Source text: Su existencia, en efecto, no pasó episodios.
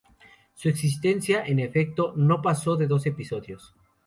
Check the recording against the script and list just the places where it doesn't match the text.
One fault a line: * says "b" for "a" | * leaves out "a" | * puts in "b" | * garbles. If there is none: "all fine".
* puts in "de dos"